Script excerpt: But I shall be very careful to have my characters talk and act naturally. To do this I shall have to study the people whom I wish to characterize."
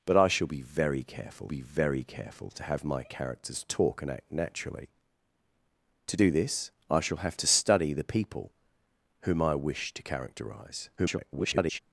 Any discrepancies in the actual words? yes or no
yes